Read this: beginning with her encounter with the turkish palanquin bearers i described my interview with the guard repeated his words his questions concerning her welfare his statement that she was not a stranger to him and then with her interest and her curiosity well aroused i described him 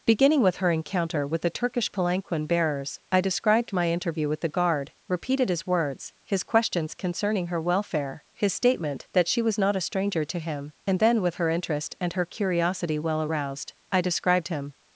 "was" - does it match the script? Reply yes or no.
yes